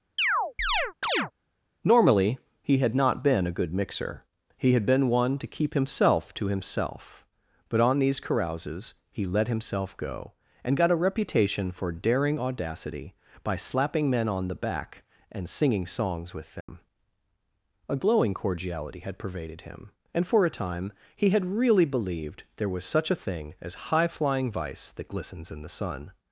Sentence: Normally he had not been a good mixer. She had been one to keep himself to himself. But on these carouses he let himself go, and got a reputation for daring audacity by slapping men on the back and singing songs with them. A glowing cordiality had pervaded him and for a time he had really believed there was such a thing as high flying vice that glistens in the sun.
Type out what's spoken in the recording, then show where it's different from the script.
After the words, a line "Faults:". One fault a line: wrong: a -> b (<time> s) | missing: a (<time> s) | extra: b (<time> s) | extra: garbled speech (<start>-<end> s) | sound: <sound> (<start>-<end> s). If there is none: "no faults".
Normally he had not been a good mixer. He had been one to keep himself to himself. But on these carouses he let himself go, and got a reputation for daring audacity by slapping men on the back and singing songs with them. A glowing cordiality had pervaded him and for a time he had really believed there was such a thing as high flying vice that glistens in the sun.
Faults:
sound: chirp (0.2-1.3 s)
wrong: She -> He (4.6 s)
sound: dropout (16.6-16.7 s)